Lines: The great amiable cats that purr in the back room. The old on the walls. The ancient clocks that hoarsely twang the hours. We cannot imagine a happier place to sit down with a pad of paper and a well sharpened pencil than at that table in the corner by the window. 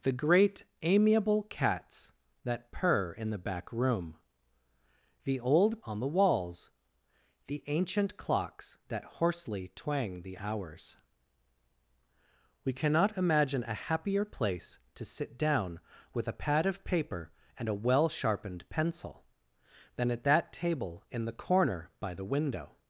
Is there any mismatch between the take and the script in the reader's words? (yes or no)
no